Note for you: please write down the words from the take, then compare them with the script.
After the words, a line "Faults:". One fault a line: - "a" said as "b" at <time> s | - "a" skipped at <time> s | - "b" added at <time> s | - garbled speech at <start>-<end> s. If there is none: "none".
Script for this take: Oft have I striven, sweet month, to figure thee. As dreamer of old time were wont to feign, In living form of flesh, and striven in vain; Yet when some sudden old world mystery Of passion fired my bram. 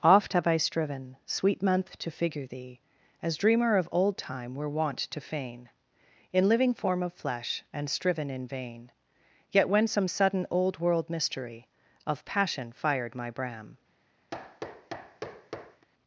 Oft have I striven, sweet month, to figure thee. As dreamer of old time were wont to feign, In living form of flesh, and striven in vain; Yet when some sudden old world mystery Of passion fired my bram.
Faults:
none